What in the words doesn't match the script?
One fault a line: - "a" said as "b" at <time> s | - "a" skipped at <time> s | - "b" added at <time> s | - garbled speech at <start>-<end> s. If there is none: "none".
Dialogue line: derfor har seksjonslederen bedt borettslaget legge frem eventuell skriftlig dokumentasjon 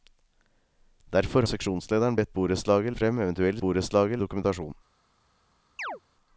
- "har" skipped at 1.4 s
- "legge" skipped at 2.9 s
- "skriftlig" said as "borettslaget" at 3.6 s